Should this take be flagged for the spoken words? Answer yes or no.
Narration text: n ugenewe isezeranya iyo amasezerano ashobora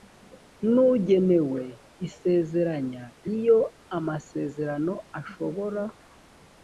no